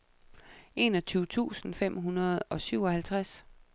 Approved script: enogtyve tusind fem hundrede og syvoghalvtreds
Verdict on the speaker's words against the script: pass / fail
pass